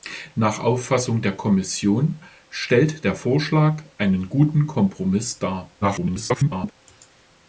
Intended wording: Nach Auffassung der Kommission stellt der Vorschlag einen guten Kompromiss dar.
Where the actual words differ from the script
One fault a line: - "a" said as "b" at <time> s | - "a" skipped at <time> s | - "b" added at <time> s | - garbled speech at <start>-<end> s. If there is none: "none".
- garbled speech at 5.8-6.7 s